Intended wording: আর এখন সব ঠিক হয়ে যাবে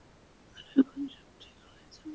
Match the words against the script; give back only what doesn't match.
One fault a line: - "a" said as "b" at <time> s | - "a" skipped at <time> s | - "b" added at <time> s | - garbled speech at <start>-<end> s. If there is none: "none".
none